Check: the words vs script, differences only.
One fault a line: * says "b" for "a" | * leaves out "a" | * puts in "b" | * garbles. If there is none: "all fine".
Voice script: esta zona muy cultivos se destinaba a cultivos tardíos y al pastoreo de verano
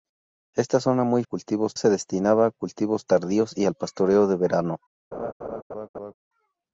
all fine